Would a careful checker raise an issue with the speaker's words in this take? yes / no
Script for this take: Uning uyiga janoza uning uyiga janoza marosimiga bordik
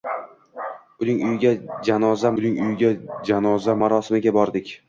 no